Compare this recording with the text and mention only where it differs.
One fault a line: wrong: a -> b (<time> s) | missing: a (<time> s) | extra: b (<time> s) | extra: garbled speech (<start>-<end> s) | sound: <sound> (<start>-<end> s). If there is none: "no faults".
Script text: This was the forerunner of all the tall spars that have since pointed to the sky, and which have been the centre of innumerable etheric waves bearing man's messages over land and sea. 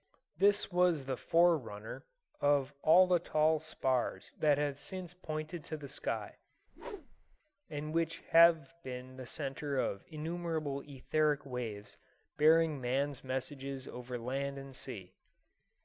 sound: whoosh (6.7-7.4 s)